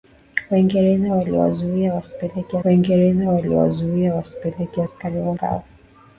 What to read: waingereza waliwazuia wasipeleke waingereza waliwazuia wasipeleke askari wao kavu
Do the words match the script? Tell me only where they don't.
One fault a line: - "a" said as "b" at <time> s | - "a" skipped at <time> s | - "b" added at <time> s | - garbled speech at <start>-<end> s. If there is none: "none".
none